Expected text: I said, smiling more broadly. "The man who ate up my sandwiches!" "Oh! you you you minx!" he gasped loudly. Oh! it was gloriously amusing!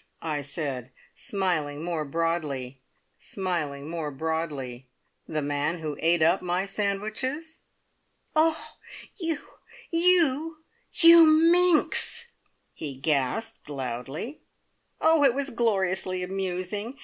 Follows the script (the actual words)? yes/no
no